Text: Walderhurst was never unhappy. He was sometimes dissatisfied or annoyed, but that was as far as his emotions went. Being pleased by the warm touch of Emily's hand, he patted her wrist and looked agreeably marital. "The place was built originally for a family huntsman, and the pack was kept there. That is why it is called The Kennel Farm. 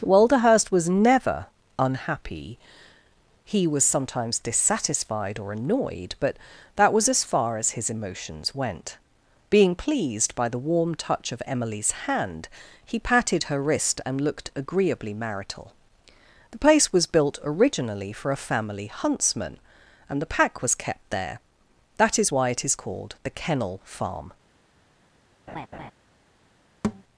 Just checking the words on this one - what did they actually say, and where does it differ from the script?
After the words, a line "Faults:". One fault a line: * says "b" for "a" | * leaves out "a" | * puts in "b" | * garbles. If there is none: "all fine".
Walderhurst was never unhappy. He was sometimes dissatisfied or annoyed, but that was as far as his emotions went. Being pleased by the warm touch of Emily's hand, he patted her wrist and looked agreeably marital. "The place was built originally for a family huntsman, and the pack was kept there. That is why it is called The Kennel Farm.
Faults:
all fine